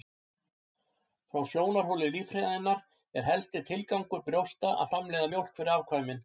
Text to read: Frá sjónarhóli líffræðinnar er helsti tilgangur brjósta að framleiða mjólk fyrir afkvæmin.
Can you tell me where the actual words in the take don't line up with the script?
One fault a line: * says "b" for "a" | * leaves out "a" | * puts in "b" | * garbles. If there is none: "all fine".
all fine